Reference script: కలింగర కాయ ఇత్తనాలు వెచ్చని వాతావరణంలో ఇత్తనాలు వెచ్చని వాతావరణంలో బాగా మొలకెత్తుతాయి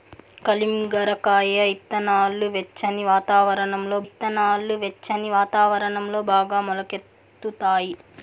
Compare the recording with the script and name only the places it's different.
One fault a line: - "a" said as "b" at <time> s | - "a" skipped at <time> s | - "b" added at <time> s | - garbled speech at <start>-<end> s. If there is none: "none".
none